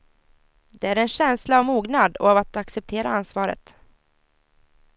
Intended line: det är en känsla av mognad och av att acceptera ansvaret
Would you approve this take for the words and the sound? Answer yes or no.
yes